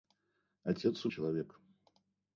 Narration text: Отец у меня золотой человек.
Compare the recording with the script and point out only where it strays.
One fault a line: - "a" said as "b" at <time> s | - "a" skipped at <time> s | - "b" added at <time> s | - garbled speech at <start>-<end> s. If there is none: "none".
- "меня золотой" skipped at 1.1 s